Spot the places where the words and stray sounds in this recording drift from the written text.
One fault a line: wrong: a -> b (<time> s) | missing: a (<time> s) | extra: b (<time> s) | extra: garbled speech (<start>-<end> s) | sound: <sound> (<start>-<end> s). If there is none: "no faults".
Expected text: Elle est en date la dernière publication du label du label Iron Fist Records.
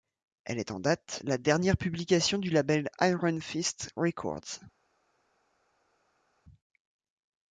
missing: du label (2.9 s)